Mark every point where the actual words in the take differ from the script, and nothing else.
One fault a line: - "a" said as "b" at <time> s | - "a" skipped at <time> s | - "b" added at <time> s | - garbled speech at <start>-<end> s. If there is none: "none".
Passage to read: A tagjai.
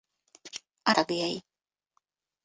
none